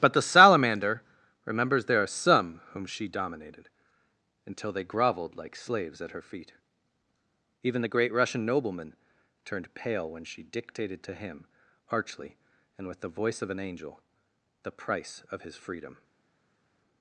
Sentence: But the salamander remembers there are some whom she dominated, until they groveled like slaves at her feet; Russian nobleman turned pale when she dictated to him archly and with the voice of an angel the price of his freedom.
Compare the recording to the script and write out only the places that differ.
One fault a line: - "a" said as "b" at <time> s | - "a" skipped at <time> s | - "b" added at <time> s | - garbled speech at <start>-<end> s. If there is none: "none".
- "even the great" added at 7.6 s